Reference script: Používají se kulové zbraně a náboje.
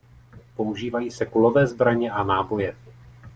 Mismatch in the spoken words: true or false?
false